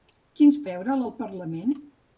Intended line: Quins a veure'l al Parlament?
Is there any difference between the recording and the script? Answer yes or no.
no